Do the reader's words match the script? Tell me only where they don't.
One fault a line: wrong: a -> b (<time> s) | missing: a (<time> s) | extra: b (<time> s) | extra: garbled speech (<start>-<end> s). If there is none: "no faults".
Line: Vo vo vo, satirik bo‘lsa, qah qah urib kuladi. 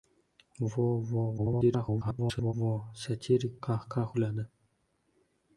extra: garbled speech (1.4-2.5 s)
missing: bo‘lsa (3.6 s)
missing: urib (4.1 s)